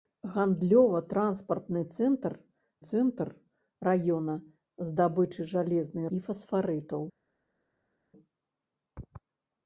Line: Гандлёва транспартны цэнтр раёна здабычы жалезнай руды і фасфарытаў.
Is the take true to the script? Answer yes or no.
no